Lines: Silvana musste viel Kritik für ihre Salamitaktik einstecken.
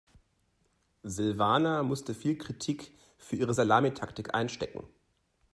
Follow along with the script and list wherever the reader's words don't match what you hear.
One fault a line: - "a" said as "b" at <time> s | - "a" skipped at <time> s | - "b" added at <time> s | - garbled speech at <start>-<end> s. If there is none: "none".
none